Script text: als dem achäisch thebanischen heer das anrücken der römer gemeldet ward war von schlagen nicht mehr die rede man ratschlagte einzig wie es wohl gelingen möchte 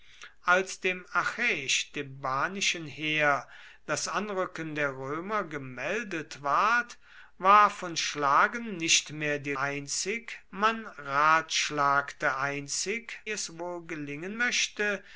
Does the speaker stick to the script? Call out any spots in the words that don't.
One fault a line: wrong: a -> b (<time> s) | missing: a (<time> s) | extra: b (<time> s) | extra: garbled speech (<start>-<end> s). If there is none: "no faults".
wrong: rede -> einzig (9.6 s)
missing: wie (13.2 s)